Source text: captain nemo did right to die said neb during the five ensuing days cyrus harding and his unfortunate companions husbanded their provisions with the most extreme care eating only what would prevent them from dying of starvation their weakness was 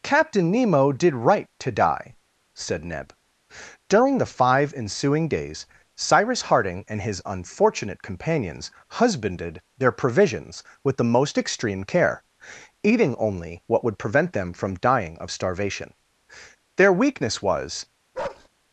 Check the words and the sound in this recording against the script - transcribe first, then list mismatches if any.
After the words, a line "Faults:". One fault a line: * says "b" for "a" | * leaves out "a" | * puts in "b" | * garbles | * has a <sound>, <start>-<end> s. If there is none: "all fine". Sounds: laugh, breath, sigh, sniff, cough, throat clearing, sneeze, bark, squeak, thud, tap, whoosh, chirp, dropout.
captain nemo did right to die said neb during the five ensuing days cyrus harding and his unfortunate companions husbanded their provisions with the most extreme care eating only what would prevent them from dying of starvation their weakness was
Faults:
* has a bark, 18.1-18.5 s